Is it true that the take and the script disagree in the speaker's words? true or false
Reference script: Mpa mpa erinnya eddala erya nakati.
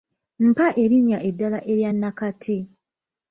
true